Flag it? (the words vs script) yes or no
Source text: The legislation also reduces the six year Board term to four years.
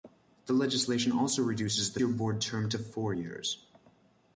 yes